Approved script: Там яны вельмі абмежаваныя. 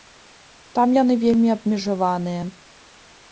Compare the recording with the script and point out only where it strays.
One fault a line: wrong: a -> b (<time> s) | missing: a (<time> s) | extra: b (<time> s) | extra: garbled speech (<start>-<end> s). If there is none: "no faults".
no faults